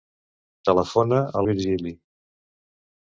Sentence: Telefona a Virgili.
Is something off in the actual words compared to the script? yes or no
no